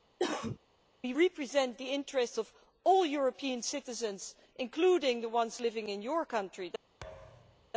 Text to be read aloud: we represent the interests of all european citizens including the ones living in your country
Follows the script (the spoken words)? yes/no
yes